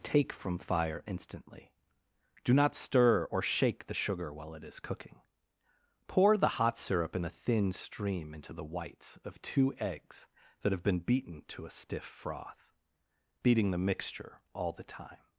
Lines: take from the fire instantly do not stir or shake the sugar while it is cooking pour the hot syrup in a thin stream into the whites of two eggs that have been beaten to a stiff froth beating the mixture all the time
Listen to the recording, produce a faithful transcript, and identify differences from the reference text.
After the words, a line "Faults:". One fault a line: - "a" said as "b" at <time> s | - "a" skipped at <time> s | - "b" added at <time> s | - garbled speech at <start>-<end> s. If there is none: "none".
take from fire instantly do not stir or shake the sugar while it is cooking pour the hot syrup in a thin stream into the whites of two eggs that have been beaten to a stiff froth beating the mixture all the time
Faults:
- "the" skipped at 0.6 s